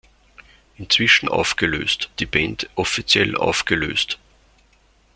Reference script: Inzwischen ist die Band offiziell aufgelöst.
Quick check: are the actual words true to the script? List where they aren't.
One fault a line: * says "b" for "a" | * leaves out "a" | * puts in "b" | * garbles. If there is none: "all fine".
* says "aufgelöst" for "ist"